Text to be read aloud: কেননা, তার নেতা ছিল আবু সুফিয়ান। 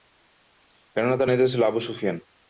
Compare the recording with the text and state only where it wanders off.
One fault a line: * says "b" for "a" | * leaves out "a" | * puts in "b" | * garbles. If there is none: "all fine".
all fine